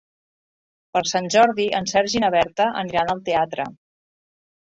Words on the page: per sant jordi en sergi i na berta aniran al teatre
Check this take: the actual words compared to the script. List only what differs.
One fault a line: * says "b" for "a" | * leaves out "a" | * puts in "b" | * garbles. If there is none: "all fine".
all fine